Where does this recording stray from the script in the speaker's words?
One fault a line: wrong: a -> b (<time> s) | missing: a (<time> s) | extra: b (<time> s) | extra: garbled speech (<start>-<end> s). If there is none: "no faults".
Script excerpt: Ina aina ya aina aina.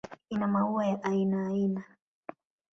wrong: aina -> maua (0.5 s)